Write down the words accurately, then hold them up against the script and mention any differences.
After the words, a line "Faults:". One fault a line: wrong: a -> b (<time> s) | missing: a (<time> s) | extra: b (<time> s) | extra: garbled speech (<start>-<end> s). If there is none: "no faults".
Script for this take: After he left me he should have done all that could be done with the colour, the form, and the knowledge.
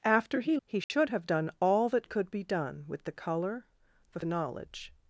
After he he should have done all that could be done with the colour, the the knowledge.
Faults:
missing: left me (0.6 s)
missing: form and (4.2 s)